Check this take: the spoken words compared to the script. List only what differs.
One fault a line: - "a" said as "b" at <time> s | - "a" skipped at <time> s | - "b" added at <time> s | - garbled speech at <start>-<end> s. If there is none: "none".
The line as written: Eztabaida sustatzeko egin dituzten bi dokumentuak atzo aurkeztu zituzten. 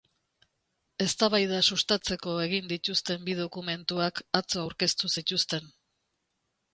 none